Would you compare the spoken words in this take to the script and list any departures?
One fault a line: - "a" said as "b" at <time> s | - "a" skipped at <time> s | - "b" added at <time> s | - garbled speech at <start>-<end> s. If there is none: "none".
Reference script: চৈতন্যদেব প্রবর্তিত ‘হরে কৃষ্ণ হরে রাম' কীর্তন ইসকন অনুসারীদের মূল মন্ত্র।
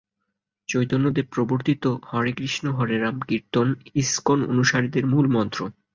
none